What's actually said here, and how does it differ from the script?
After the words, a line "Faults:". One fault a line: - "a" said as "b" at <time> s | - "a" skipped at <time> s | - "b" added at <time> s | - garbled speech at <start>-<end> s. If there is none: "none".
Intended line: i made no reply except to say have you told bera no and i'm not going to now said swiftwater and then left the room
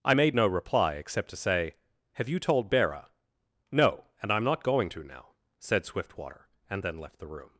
i made no reply except to say have you told bera no and i'm not going to now said swiftwater and then left the room
Faults:
none